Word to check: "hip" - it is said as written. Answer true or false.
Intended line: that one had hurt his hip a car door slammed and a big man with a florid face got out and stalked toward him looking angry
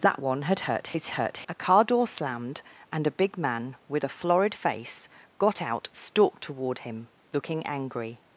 false